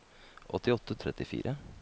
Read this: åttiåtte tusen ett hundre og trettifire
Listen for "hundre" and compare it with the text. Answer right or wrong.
wrong